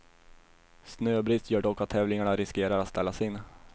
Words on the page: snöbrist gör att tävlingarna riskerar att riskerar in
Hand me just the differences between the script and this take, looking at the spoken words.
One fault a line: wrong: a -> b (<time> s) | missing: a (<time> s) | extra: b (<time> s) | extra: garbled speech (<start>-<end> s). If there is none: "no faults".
extra: dock (1.6 s)
wrong: riskerar -> ställas (2.9 s)